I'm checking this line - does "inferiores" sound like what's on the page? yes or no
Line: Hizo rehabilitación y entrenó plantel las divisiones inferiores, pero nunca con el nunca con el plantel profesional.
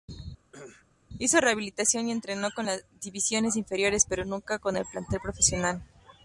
yes